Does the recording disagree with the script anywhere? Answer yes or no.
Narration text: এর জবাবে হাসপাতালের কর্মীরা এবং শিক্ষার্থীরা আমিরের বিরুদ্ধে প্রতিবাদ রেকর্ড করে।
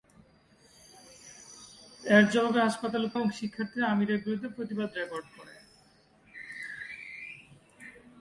yes